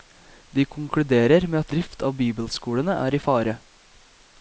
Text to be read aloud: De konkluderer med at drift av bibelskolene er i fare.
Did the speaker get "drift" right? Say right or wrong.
right